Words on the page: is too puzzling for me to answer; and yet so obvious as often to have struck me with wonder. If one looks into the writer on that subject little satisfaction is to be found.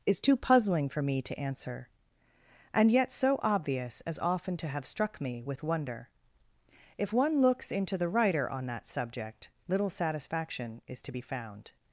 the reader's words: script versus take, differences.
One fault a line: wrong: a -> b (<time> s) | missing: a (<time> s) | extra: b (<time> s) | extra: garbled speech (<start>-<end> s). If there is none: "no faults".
no faults